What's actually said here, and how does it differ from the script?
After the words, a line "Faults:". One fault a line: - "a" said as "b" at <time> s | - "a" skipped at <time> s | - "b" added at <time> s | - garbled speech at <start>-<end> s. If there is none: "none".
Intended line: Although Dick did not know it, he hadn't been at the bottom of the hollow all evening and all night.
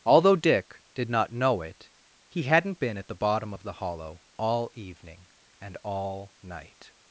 Although Dick did not know it, he hadn't been at the bottom of the hollow all evening and all night.
Faults:
none